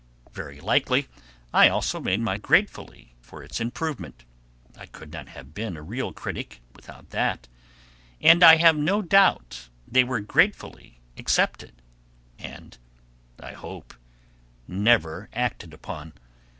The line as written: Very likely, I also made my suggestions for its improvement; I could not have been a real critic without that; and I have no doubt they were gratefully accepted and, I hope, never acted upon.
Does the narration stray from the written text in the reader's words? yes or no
yes